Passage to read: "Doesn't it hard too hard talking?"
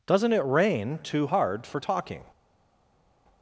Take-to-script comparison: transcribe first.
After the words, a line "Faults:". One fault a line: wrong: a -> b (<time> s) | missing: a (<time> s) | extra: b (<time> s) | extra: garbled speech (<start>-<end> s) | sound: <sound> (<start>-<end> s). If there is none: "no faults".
"Doesn't it rain too hard for talking?"
Faults:
wrong: hard -> rain (0.4 s)
extra: for (1.7 s)